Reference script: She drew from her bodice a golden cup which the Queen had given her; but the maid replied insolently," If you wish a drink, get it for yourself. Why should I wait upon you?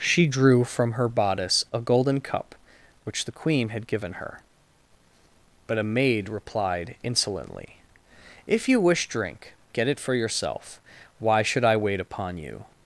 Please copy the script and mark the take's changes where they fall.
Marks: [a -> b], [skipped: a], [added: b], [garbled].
She drew from her bodice a golden cup which the Queen had given her; but [the -> a] maid replied insolently," If you wish [skipped: a] drink, get it for yourself. Why should I wait upon you?